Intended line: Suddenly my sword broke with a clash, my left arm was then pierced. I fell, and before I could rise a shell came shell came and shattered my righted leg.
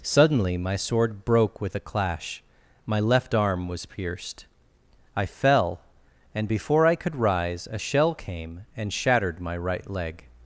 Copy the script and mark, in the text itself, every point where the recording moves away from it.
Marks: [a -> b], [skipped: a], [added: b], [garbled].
Suddenly my sword broke with a clash, my left arm was [skipped: then] pierced. I fell, and before I could rise a shell came [skipped: shell came] and shattered my [righted -> right] leg.